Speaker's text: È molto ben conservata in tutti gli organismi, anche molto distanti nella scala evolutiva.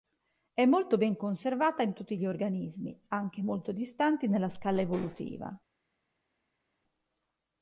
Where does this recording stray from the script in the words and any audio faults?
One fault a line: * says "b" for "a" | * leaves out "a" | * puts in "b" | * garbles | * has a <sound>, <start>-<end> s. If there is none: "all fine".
all fine